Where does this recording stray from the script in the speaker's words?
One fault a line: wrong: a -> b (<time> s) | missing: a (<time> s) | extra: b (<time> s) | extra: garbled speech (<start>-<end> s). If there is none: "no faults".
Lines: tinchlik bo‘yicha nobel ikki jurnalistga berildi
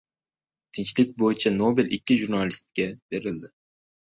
no faults